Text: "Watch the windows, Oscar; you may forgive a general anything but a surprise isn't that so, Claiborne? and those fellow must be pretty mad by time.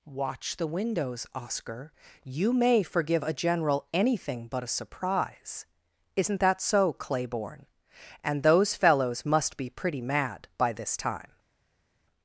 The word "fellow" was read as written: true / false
false